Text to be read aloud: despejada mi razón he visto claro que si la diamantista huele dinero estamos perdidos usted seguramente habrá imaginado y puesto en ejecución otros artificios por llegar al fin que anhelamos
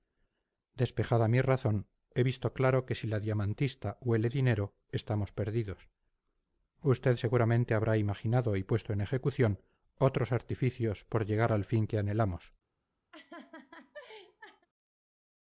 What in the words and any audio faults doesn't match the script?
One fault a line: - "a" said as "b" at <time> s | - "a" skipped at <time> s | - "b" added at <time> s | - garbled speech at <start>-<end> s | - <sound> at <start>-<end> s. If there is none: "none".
- laugh at 13.1-14.7 s